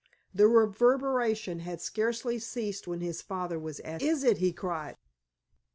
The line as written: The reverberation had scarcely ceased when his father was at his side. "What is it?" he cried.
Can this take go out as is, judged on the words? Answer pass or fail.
fail